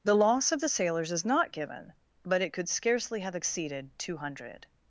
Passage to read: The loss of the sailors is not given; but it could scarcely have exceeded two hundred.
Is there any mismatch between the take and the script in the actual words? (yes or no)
no